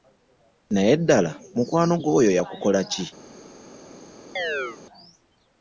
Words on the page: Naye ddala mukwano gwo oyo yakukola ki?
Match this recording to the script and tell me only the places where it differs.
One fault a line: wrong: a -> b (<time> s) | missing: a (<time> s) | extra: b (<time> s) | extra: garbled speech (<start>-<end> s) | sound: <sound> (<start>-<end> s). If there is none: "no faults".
sound: chirp (4.4-4.8 s)